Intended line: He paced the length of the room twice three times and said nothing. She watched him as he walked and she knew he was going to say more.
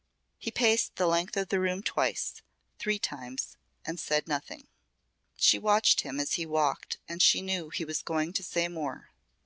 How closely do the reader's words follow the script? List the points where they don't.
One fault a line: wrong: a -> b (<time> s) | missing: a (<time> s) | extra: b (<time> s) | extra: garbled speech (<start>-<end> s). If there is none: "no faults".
no faults